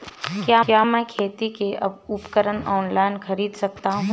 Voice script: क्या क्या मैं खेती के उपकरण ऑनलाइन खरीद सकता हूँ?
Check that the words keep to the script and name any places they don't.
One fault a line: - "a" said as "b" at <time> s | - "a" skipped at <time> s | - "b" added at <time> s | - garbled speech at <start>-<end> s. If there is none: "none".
none